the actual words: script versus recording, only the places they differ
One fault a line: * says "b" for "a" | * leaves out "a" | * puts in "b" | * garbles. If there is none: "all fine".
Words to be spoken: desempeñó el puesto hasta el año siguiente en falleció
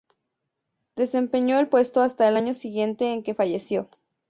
* puts in "que"